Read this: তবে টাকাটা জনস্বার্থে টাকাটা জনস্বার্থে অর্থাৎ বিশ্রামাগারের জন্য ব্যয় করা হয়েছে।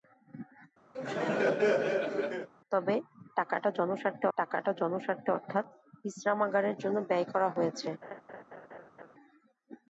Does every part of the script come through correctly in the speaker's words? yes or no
yes